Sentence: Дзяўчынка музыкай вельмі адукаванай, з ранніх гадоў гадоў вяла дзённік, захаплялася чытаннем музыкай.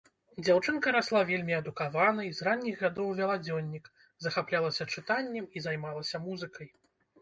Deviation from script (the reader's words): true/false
true